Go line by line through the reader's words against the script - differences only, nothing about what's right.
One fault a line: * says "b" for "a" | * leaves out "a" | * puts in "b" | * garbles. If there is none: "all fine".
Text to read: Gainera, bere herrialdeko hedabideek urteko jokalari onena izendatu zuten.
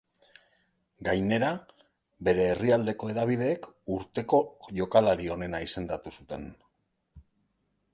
all fine